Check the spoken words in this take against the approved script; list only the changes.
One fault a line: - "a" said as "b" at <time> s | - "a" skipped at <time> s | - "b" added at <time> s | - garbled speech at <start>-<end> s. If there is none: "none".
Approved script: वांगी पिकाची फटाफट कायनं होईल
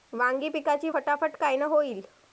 none